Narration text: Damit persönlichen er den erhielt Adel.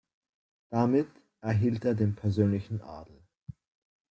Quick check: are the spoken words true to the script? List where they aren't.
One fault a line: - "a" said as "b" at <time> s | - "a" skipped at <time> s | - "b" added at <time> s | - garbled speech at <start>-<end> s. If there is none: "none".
- "persönlichen" said as "erhielt" at 1.4 s
- "erhielt" said as "persönlichen" at 2.1 s